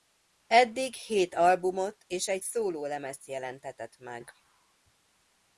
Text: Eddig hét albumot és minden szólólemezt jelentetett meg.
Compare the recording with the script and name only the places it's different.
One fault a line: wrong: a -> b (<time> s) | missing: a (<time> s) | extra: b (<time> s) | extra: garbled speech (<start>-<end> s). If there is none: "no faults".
wrong: minden -> egy (2.3 s)